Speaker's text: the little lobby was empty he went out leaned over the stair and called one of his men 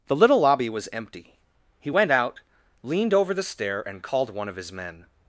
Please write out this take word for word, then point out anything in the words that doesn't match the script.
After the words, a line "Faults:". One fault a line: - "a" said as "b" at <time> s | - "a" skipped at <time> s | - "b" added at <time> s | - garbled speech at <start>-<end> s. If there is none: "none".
the little lobby was empty he went out leaned over the stair and called one of his men
Faults:
none